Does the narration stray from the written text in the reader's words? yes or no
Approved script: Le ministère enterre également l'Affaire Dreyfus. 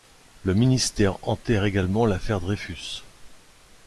no